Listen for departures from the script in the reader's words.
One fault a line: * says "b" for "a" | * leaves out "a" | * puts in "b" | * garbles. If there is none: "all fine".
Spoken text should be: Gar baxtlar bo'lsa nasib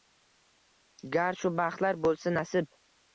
* puts in "shu"